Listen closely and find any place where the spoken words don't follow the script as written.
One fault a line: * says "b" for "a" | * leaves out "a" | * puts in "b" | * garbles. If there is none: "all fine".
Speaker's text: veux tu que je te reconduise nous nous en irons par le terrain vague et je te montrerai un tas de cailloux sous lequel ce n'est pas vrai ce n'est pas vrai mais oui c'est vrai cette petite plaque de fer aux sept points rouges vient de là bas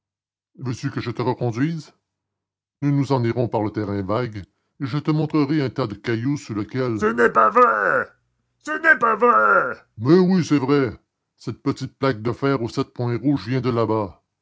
all fine